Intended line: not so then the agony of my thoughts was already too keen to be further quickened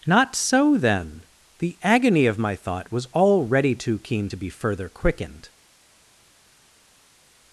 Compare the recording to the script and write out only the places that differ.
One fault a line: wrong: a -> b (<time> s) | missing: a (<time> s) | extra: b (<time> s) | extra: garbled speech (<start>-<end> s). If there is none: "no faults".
wrong: thoughts -> thought (2.5 s)